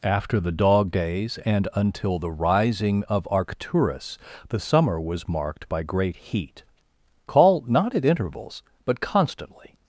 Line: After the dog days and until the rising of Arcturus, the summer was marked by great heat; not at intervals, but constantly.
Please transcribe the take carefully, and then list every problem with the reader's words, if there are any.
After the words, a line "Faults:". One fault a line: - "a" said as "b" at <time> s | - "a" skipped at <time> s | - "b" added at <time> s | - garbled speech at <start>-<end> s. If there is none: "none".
After the dog days and until the rising of Arcturus, the summer was marked by great heat; call not at intervals, but constantly.
Faults:
- "call" added at 7.3 s